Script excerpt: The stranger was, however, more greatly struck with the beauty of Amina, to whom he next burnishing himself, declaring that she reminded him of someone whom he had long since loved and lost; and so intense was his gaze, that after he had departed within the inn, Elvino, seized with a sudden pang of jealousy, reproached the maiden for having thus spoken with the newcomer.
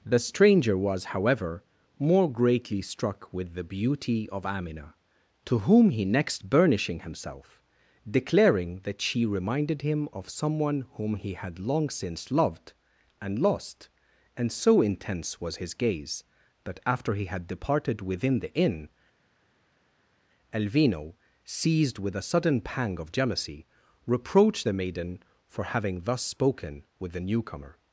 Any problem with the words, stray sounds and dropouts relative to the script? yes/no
no